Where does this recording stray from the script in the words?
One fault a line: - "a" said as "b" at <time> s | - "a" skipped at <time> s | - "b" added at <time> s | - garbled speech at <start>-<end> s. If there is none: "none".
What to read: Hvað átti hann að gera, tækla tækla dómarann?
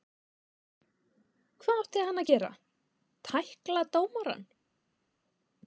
- "tækla" skipped at 3.9 s